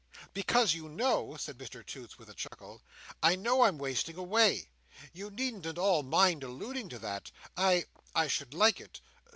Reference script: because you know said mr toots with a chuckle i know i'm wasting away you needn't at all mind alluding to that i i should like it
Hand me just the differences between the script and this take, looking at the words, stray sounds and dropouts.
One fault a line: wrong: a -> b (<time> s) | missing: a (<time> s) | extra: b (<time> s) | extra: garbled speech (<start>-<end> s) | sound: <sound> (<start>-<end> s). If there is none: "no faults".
sound: dropout (2.5-2.5 s)